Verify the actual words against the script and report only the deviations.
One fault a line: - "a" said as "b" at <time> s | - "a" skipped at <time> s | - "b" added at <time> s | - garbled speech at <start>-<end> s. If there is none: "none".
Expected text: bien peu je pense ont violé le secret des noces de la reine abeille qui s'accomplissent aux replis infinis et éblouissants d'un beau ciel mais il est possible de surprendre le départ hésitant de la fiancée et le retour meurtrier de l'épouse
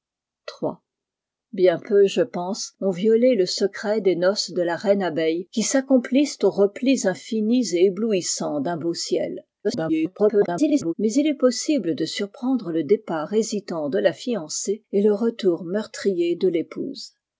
- garbled speech at 9.6-10.9 s